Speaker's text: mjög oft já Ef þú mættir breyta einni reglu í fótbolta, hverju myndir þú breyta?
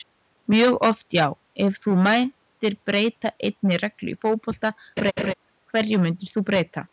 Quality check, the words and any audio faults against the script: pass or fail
fail